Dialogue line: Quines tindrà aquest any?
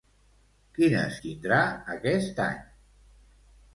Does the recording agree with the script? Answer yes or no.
yes